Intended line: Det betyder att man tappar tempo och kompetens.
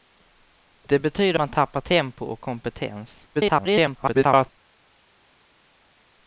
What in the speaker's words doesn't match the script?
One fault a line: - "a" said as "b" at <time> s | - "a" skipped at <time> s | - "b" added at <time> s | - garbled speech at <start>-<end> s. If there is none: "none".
- "att" skipped at 1.4 s
- garbled speech at 3.3-4.5 s